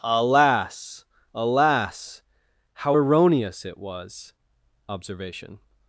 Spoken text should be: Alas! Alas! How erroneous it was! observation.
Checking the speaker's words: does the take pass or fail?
pass